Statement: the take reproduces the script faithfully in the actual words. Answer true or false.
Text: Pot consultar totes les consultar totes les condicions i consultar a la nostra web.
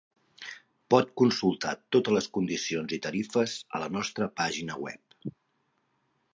false